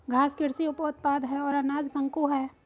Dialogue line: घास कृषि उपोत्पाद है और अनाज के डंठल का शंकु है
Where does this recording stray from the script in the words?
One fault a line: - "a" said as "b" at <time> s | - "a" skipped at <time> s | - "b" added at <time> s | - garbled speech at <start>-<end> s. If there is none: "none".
- "के डंठल का" skipped at 1.9 s